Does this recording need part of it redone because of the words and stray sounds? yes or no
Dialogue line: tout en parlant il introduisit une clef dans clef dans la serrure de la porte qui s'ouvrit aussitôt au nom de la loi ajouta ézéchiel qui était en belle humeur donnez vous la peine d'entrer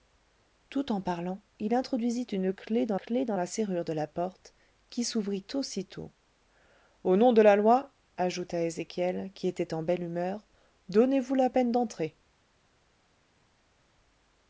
no